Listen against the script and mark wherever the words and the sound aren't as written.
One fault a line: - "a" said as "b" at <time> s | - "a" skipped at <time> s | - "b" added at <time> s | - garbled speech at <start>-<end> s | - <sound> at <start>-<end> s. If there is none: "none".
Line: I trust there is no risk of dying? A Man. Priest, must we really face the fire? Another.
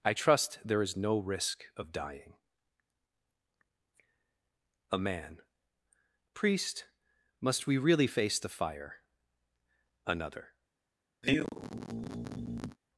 - sigh at 11.2-12.8 s